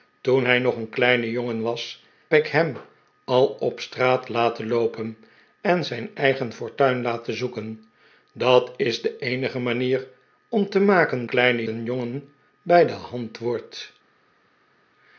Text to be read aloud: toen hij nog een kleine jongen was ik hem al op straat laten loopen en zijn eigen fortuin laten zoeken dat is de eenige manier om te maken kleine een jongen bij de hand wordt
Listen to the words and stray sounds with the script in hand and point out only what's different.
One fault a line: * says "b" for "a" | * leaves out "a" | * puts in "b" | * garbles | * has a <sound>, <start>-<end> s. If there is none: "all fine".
all fine